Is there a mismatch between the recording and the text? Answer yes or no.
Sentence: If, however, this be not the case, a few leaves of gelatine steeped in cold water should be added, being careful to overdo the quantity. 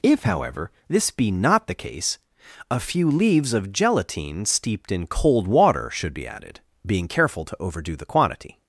no